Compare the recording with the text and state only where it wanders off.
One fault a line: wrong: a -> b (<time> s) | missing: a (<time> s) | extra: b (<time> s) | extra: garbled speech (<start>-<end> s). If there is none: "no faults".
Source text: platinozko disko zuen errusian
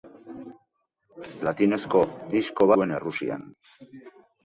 no faults